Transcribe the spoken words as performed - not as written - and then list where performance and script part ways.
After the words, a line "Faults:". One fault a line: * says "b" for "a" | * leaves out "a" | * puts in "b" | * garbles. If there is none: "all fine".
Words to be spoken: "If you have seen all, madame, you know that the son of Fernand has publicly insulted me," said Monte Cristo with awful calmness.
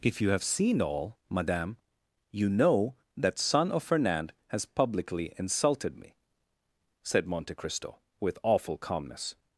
"If you have seen all, madame, you know that son of Fernand has publicly insulted me," said Monte Cristo with awful calmness.
Faults:
* leaves out "the"